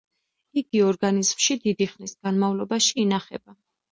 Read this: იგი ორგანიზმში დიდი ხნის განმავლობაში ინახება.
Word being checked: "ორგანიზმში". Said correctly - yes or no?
yes